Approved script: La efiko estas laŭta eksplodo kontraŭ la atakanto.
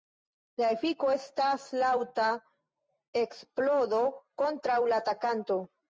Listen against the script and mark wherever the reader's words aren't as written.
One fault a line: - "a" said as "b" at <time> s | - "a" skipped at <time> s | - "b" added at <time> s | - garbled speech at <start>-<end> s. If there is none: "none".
none